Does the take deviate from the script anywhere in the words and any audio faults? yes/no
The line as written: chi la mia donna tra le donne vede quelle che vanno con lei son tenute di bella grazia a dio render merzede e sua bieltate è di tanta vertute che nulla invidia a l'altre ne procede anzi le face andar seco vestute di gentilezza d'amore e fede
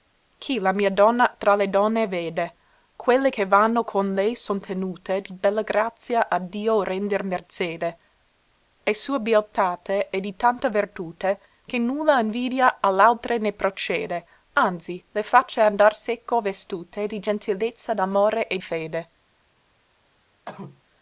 yes